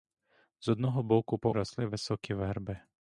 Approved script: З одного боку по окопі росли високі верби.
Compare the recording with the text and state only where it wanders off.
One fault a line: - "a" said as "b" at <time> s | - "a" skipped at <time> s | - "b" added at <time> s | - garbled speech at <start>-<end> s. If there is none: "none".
- "окопі" skipped at 1.5 s